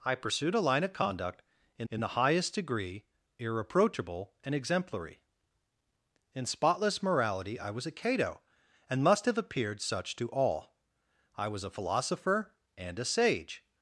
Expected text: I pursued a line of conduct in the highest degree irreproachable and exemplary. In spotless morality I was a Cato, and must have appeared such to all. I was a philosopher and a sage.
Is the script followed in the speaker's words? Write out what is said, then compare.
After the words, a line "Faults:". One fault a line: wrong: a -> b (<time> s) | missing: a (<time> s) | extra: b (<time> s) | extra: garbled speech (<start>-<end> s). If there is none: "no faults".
I pursued a line of conduct in in the highest degree irreproachable and exemplary. In spotless morality I was a Cato, and must have appeared such to all. I was a philosopher and a sage.
Faults:
extra: in (1.9 s)